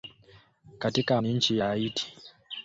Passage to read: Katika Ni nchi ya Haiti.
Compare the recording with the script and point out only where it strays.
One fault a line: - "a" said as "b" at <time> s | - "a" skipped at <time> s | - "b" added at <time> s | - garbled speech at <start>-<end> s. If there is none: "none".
none